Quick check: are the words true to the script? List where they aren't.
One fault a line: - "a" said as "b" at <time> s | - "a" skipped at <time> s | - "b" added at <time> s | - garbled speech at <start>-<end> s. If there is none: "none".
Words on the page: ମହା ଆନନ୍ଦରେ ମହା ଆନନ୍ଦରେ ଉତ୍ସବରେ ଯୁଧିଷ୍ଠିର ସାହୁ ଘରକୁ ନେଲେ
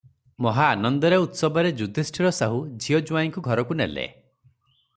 - "ମହା ଆନନ୍ଦରେ" skipped at 1.2 s
- "ଝିଅ ଜୁଆଇଁଙ୍କୁ" added at 2.8 s